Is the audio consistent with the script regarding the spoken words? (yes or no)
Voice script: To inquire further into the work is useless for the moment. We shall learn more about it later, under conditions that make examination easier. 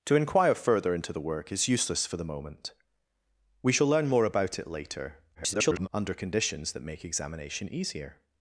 no